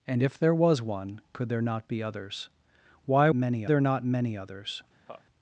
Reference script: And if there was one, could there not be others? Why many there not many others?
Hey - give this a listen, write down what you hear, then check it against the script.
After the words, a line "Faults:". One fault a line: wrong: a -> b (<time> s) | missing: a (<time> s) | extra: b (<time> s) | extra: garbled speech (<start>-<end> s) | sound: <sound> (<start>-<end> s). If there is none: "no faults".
And if there was one, could there not be others? Why many there not many others?
Faults:
sound: laugh (5.1-5.2 s)